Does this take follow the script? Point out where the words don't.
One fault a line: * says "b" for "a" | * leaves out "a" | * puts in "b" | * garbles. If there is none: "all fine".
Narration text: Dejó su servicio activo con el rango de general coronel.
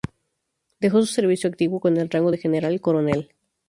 all fine